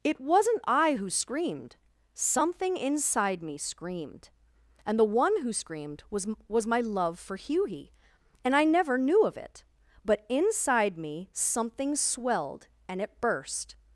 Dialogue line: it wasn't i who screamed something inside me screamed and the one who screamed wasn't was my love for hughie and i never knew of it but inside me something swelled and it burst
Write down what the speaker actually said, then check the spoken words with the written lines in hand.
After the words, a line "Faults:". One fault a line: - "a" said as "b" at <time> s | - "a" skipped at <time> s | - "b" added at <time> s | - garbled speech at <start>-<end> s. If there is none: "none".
it wasn't i who screamed something inside me screamed and the one who screamed was was my love for hughie and i never knew of it but inside me something swelled and it burst
Faults:
- "wasn't" said as "was" at 6.1 s